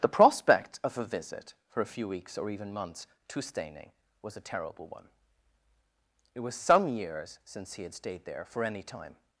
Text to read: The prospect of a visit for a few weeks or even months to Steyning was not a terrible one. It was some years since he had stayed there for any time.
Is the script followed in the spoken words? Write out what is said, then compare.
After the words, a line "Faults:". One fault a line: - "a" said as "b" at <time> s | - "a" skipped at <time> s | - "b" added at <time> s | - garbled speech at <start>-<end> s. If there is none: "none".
The prospect of a visit for a few weeks or even months to Steyning was a terrible one. It was some years since he had stayed there for any time.
Faults:
- "not" skipped at 4.3 s